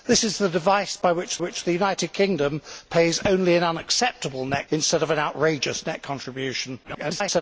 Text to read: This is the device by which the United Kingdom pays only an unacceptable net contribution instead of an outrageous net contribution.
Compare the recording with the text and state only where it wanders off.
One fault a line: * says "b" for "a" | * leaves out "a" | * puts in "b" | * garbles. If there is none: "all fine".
* puts in "which"
* leaves out "contribution"
* garbles